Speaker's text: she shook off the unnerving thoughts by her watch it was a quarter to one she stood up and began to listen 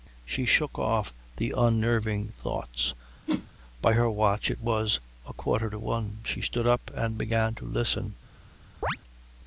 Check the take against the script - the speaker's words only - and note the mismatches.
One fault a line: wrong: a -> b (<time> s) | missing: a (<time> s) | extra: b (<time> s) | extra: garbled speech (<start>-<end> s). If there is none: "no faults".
no faults